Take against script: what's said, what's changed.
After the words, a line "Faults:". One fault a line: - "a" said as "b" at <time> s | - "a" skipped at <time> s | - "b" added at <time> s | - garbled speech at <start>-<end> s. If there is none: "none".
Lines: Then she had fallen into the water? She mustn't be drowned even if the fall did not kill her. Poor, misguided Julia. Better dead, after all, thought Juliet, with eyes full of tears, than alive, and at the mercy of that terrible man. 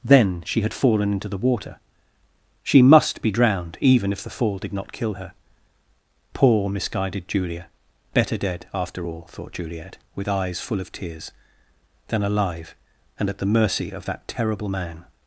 Then she had fallen into the water? She must be drowned even if the fall did not kill her. Poor, misguided Julia. Better dead, after all, thought Juliet, with eyes full of tears, than alive, and at the mercy of that terrible man.
Faults:
- "mustn't" said as "must" at 2.8 s